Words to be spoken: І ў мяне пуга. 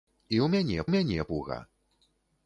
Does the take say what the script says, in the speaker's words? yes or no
no